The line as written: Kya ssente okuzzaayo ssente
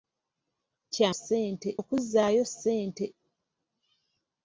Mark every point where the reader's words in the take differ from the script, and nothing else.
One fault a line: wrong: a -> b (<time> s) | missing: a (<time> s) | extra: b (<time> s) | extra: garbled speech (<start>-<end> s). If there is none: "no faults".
no faults